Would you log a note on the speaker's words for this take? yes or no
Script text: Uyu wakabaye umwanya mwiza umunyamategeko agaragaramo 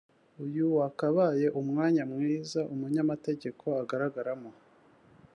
no